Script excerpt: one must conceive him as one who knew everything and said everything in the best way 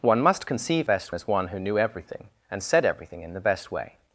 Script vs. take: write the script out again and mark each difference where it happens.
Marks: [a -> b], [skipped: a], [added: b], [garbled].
one must conceive [him -> best] as one who knew everything and said everything in the best way